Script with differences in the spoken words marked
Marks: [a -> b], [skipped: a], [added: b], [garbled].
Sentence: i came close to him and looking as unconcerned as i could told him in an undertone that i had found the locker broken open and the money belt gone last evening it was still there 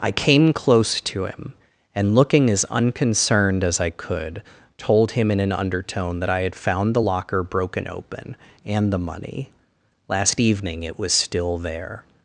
i came close to him and looking as unconcerned as i could told him in an undertone that i had found the locker broken open and the money [skipped: belt gone] last evening it was still there